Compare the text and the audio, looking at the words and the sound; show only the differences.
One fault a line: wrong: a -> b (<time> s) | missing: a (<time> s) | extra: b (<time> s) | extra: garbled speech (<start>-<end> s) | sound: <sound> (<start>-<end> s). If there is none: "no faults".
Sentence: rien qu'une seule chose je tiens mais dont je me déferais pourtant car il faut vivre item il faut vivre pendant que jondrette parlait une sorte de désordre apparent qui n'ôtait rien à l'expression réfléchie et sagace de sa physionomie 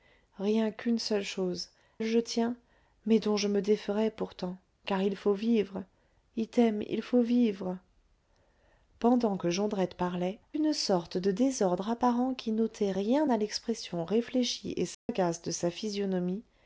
sound: dropout (14.9-15.1 s)